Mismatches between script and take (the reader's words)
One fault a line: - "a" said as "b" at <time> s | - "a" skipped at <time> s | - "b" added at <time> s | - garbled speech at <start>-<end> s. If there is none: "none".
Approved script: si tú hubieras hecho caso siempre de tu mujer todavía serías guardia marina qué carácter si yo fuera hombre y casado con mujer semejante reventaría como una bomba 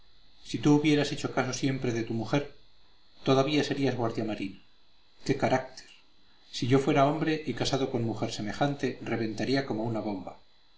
none